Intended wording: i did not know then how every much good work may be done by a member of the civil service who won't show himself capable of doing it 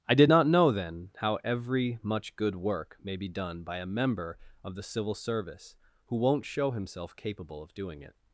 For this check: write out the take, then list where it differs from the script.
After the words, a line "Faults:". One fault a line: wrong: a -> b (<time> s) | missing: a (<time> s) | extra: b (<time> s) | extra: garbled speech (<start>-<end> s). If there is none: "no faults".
i did not know then how every much good work may be done by a member of the civil service who won't show himself capable of doing it
Faults:
no faults